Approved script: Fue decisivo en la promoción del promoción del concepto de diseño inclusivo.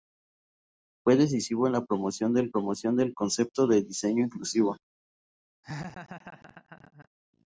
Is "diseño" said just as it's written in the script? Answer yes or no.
yes